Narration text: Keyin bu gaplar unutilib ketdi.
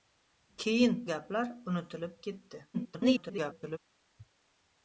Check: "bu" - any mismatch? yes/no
yes